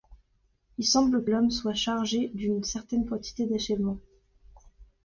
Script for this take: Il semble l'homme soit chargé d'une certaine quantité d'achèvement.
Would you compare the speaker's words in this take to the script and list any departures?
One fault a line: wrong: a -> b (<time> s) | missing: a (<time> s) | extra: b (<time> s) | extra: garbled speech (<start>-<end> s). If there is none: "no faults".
no faults